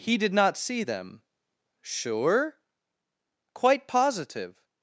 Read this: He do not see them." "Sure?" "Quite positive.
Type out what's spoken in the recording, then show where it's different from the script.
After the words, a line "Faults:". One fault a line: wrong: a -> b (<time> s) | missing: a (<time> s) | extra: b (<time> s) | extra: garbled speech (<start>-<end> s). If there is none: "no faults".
He did not see them." "Sure?" "Quite positive.
Faults:
wrong: do -> did (0.2 s)